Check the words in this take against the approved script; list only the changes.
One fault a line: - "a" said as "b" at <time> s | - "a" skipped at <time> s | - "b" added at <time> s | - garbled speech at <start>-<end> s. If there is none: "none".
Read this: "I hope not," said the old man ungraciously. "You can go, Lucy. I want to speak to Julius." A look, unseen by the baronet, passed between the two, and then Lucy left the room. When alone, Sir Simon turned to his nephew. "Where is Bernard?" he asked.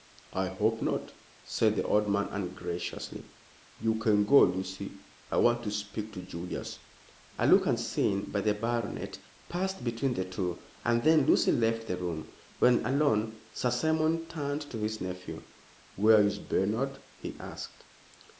none